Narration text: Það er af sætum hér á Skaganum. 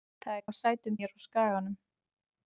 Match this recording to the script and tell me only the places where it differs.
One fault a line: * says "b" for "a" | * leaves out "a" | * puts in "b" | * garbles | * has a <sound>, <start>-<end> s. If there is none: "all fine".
all fine